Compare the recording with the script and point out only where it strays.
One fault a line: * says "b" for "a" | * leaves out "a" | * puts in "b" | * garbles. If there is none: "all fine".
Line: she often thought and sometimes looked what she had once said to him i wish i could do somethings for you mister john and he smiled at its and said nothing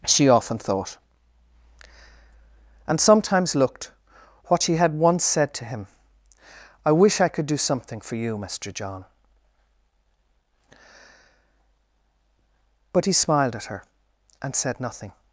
* says "something" for "somethings"
* says "but" for "and"
* says "her" for "its"